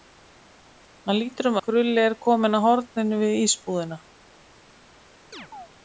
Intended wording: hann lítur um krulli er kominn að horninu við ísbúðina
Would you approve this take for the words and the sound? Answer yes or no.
no